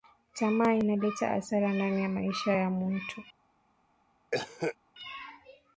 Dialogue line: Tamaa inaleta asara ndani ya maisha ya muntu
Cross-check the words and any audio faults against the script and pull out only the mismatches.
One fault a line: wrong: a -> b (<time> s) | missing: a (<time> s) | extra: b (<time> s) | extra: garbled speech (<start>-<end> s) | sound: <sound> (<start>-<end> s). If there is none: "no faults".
sound: cough (4.3-4.8 s)